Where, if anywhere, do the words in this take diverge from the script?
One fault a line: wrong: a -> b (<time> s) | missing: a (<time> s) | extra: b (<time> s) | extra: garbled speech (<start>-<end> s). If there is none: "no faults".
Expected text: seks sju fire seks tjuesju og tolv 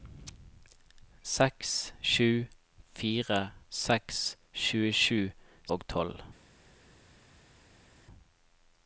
no faults